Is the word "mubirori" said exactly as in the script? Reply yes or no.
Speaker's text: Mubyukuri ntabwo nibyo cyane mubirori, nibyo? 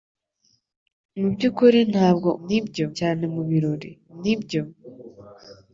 yes